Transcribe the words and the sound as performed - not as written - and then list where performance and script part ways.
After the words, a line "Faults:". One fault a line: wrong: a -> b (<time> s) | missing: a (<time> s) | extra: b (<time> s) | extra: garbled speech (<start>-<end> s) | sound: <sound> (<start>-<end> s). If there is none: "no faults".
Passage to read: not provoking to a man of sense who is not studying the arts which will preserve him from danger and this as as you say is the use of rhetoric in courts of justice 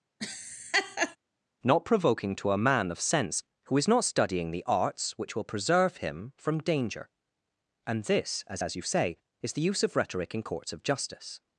not provoking to a man of sense who is not studying the arts which will preserve him from danger and this as as you say is the use of rhetoric in courts of justice
Faults:
sound: laugh (0.2-1.2 s)